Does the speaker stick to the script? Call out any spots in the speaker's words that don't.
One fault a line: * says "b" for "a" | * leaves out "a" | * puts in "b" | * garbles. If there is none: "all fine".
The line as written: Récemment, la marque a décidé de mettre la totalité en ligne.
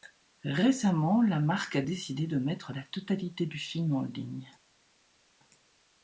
* puts in "du film"